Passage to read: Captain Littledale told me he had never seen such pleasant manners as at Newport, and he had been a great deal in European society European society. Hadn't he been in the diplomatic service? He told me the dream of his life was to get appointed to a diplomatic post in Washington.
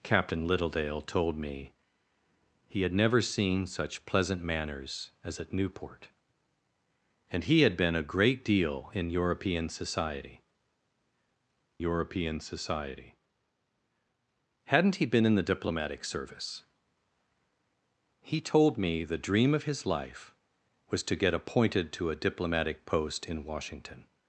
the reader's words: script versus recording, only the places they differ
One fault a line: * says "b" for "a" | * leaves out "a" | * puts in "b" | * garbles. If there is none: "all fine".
all fine